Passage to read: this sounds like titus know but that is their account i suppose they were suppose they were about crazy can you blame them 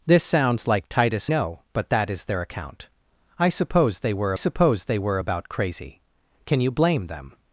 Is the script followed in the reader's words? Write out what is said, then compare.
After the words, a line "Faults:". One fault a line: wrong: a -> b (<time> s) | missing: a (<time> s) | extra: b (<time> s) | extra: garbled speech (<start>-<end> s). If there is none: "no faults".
this sounds like titus know but that is their account i suppose they were suppose they were about crazy can you blame them
Faults:
no faults